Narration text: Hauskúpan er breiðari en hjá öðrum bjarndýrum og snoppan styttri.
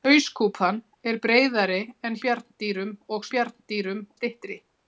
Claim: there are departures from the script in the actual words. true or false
true